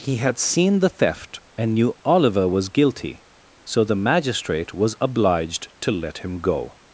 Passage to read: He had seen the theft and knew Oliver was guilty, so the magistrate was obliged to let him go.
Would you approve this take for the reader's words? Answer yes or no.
yes